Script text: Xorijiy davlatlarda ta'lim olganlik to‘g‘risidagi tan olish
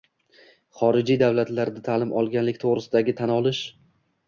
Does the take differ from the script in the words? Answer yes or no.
no